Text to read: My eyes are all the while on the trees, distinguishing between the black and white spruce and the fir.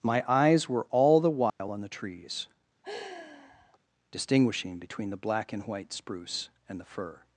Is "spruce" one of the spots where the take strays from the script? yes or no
no